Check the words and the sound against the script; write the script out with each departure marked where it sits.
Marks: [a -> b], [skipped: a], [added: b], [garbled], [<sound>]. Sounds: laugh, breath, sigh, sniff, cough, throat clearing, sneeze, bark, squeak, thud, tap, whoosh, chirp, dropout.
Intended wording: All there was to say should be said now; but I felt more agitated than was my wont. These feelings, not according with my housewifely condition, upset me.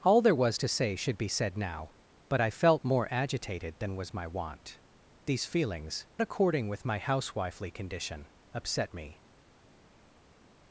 All there was to say should be said now; but I felt more agitated than was my wont. These feelings, [skipped: not] according with my housewifely condition, upset me.